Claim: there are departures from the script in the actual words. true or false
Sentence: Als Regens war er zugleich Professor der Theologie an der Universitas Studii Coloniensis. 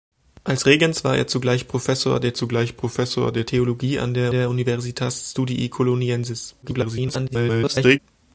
true